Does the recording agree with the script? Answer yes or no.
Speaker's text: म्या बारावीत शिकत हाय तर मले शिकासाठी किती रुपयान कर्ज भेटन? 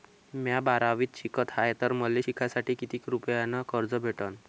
yes